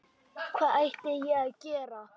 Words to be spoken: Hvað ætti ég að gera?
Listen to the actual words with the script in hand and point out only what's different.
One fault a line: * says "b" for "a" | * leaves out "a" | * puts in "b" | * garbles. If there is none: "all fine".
all fine